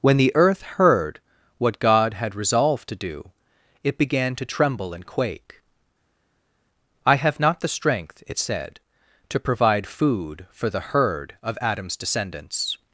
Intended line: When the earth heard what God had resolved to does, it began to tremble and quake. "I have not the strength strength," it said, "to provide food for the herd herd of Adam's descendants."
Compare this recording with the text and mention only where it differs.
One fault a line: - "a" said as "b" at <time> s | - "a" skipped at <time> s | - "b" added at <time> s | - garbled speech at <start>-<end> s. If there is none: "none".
- "does" said as "do" at 3.0 s
- "strength" skipped at 8.2 s
- "herd" skipped at 11.4 s